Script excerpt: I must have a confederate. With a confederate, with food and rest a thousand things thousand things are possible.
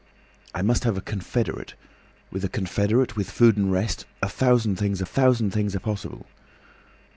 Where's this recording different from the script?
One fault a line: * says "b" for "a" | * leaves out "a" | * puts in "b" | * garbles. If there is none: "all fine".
all fine